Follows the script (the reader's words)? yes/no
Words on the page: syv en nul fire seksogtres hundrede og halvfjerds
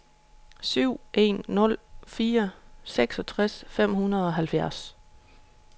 no